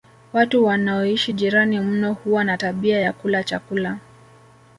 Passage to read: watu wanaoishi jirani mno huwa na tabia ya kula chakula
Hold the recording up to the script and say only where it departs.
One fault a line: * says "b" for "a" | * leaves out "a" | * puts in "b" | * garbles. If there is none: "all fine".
all fine